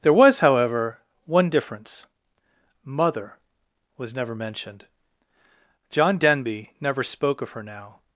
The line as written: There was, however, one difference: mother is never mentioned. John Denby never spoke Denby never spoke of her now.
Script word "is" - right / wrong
wrong